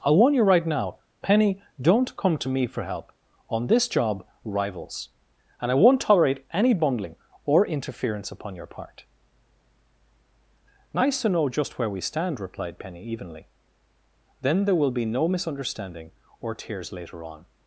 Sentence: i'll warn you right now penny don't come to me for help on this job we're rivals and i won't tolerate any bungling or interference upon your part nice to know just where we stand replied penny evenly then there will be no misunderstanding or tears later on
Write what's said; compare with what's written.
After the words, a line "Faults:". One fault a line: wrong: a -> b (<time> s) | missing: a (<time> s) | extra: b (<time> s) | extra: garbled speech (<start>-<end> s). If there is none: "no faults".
i'll warn you right now penny don't come to me for help on this job rivals and i won't tolerate any bungling or interference upon your part nice to know just where we stand replied penny evenly then there will be no misunderstanding or tears later on
Faults:
missing: we're (4.2 s)